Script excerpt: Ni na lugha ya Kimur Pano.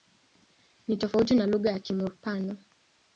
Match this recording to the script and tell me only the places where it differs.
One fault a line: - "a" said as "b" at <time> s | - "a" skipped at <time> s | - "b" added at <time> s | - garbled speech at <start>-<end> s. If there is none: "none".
- "tofauti" added at 1.0 s